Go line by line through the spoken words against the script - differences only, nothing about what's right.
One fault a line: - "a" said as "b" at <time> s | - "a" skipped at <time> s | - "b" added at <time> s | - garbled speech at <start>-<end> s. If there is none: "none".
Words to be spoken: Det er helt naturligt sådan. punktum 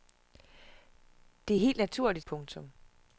- "sådan" skipped at 2.3 s